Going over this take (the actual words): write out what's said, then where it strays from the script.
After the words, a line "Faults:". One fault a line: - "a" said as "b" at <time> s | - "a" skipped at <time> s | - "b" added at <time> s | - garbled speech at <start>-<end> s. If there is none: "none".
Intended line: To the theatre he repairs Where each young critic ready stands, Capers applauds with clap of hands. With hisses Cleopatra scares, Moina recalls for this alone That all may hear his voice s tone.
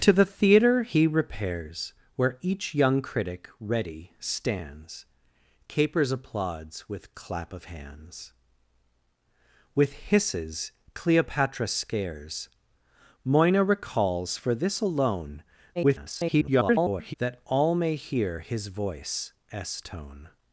To the theatre he repairs Where each young critic ready stands, Capers applauds with clap of hands. With hisses Cleopatra scares, Moina recalls for this alone [garbled] That all may hear his voice s tone.
Faults:
- garbled speech at 15.8-17.1 s